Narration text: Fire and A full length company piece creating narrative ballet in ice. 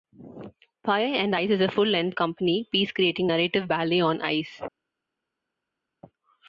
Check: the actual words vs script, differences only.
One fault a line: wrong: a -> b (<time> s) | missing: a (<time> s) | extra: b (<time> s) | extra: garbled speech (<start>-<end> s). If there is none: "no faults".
extra: Ice is (1.3 s)
wrong: in -> on (4.0 s)